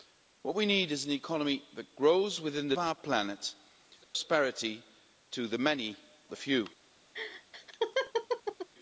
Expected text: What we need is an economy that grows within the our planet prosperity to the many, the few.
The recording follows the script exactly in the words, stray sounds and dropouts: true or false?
false